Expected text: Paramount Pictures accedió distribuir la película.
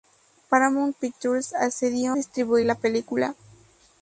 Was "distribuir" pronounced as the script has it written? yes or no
yes